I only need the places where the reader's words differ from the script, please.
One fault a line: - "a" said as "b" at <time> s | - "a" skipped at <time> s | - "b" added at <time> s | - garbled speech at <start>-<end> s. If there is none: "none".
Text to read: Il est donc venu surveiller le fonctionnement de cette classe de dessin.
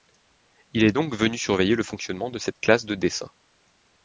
none